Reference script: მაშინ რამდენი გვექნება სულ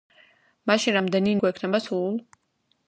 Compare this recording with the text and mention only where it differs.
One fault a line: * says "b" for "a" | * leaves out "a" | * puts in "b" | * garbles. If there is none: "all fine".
all fine